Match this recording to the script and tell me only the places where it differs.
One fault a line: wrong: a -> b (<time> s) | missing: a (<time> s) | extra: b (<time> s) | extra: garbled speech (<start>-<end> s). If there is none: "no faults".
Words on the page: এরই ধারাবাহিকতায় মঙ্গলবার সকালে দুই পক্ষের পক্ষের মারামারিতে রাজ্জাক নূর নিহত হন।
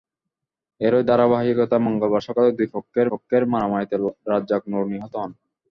no faults